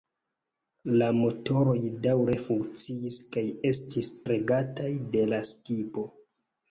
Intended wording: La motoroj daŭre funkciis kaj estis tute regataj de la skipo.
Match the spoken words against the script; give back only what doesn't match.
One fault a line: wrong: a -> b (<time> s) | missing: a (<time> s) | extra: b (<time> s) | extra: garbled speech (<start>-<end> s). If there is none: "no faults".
missing: tute (4.1 s)